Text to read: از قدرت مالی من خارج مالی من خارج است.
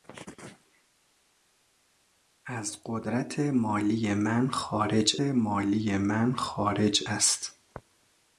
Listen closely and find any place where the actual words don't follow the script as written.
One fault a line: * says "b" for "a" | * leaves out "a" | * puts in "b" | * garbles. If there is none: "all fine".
all fine